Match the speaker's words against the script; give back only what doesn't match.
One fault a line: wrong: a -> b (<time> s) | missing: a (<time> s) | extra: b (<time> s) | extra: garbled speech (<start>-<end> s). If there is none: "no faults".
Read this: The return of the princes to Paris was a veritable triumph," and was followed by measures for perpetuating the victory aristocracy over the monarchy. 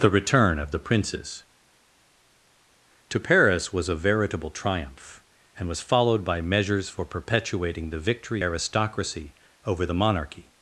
no faults